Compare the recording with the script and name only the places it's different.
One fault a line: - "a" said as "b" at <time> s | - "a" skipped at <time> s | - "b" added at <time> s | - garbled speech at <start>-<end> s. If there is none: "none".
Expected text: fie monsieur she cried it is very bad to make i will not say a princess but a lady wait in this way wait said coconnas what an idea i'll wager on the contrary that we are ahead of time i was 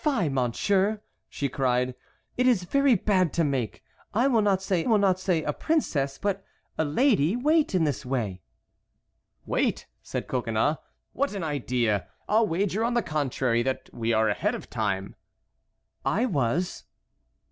- "will not say" added at 4.8 s